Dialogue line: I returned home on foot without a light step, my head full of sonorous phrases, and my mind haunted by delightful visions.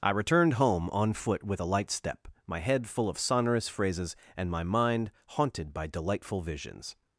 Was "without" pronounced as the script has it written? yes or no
no